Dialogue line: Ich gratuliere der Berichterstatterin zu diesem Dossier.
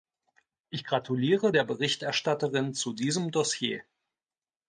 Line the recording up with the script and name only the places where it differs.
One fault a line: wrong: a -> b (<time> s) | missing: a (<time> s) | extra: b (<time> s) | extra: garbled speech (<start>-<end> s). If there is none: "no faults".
no faults